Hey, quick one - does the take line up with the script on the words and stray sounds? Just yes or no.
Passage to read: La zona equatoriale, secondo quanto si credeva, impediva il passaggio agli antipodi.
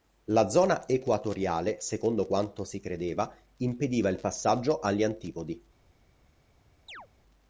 no